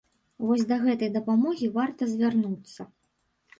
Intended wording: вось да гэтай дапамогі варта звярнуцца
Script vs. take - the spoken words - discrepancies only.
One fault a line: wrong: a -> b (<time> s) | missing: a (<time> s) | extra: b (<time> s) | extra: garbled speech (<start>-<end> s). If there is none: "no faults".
no faults